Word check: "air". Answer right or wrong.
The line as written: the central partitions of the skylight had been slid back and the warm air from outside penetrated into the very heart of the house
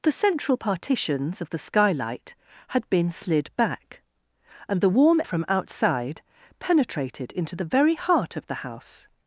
wrong